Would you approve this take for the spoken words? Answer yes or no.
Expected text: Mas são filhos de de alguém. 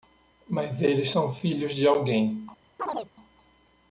no